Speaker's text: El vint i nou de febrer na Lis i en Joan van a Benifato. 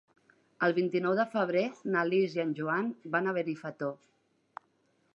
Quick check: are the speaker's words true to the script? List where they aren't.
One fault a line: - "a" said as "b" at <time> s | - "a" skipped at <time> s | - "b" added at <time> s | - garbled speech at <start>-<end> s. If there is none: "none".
none